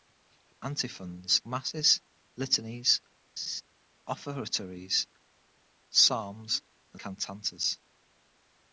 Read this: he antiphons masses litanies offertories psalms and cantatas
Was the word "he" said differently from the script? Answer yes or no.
no